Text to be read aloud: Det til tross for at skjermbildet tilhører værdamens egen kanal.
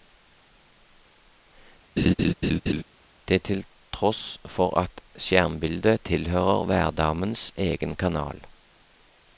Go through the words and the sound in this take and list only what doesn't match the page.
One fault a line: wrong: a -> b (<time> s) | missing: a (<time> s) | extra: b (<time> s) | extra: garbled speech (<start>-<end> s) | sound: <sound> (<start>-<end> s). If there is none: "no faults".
sound: laugh (2.0-2.8 s)